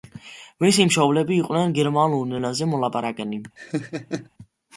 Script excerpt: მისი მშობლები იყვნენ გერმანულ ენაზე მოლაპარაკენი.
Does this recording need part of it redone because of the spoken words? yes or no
no